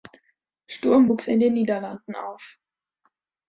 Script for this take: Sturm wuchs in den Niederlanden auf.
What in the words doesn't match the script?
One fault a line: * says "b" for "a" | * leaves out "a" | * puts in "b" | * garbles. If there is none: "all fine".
all fine